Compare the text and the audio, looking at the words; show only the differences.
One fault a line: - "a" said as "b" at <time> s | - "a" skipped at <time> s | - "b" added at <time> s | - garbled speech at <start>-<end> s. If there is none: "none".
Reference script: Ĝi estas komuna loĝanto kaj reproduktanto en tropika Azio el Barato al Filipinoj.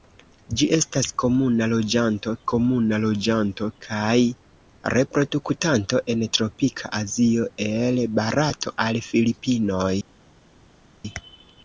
- "komuna loĝanto" added at 2.5 s